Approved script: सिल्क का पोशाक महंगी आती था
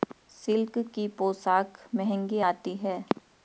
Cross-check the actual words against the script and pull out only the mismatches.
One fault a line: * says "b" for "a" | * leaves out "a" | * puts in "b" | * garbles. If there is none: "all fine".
* says "की" for "का"
* says "है" for "था"